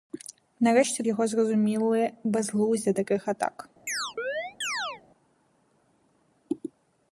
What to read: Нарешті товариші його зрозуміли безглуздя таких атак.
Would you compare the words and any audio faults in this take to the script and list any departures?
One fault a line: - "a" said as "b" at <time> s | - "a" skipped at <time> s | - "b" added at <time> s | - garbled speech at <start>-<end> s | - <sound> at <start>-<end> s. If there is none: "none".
- "товариші" skipped at 1.0 s
- chirp at 3.9-5.0 s